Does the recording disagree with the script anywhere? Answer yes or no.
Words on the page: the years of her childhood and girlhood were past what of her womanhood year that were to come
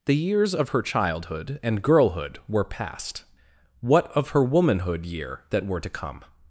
no